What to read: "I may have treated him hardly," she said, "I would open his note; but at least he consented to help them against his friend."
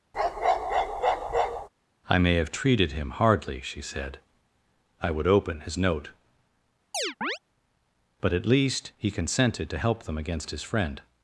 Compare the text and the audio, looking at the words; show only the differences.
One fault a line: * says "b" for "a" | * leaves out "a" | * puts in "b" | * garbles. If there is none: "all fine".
all fine